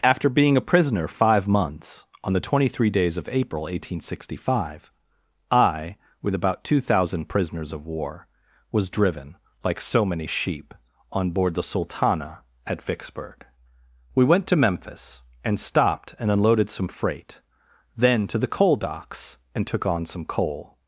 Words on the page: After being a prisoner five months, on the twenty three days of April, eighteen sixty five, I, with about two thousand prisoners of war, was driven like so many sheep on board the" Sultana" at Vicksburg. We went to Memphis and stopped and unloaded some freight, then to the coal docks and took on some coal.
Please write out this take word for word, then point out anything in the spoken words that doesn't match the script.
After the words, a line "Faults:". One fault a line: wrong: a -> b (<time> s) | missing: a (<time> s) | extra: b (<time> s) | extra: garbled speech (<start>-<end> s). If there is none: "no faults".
After being a prisoner five months, on the twenty three days of April, eighteen sixty five, I, with about two thousand prisoners of war, was driven like so many sheep on board the" Sultana" at Vicksburg. We went to Memphis and stopped and unloaded some freight, then to the coal docks and took on some coal.
Faults:
no faults